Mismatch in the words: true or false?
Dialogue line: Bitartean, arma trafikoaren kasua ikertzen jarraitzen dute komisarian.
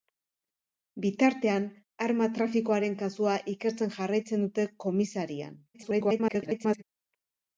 true